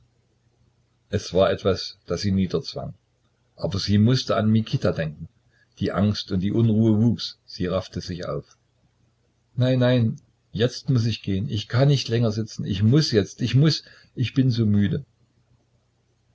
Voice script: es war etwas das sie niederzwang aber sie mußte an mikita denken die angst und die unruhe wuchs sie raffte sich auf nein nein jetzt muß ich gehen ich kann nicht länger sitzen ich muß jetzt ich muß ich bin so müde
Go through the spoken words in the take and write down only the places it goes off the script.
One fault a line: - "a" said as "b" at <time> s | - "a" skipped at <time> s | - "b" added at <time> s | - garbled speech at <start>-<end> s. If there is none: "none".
none